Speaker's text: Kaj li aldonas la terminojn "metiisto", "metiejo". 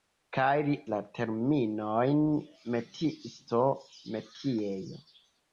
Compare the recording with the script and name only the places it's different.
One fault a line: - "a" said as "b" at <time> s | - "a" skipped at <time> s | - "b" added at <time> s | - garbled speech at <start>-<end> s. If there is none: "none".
- "aldonas" skipped at 0.8 s